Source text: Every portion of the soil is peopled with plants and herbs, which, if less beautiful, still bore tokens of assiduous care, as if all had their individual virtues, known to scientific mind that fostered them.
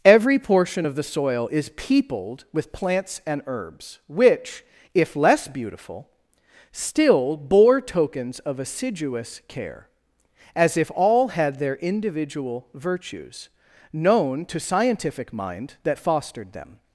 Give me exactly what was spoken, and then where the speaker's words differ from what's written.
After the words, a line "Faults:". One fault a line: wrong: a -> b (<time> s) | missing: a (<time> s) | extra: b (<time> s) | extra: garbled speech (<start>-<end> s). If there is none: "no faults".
Every portion of the soil is peopled with plants and herbs, which, if less beautiful, still bore tokens of assiduous care, as if all had their individual virtues, known to scientific mind that fostered them.
Faults:
no faults